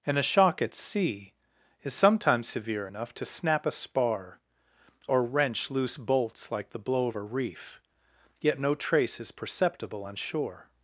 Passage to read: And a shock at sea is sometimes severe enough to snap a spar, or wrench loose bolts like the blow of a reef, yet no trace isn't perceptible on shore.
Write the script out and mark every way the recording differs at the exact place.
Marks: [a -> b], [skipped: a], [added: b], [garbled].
And a shock at sea is sometimes severe enough to snap a spar, or wrench loose bolts like the blow of a reef, yet no trace [isn't -> is] perceptible on shore.